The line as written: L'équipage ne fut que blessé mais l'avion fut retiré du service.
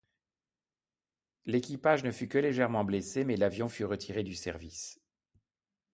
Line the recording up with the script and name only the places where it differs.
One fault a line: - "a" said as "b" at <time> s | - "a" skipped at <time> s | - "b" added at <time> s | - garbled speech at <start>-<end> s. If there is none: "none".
- "légèrement" added at 2.4 s